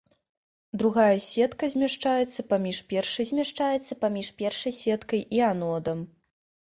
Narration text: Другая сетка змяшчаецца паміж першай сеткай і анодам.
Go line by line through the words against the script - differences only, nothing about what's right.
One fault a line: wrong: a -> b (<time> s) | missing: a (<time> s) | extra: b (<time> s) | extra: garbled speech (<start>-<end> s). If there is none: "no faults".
extra: змяшчаецца паміж першай (3.3 s)